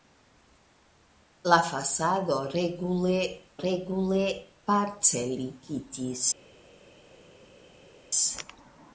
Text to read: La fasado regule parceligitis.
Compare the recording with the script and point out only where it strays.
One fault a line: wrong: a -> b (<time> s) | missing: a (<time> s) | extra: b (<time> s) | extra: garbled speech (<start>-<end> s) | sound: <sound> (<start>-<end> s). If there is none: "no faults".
extra: regule (3.6 s)